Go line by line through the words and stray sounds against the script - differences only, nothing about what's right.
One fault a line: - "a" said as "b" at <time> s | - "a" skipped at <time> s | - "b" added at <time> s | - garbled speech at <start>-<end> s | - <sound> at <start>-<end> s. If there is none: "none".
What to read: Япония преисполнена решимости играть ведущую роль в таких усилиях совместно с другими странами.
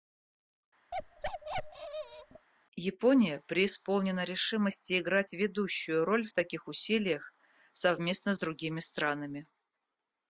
- bark at 0.9-2.5 s